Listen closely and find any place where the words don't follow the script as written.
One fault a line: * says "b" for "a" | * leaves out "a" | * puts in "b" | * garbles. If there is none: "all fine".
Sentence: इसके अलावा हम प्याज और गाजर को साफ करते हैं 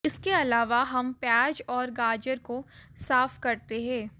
all fine